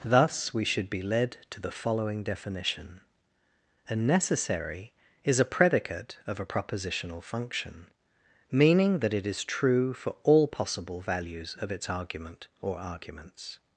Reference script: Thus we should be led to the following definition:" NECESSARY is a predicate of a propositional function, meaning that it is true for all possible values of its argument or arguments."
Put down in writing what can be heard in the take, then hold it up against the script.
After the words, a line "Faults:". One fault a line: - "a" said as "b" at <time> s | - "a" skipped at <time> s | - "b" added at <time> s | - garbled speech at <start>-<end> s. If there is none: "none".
Thus we should be led to the following definition:" a NECESSARY is a predicate of a propositional function, meaning that it is true for all possible values of its argument or arguments."
Faults:
- "a" added at 3.9 s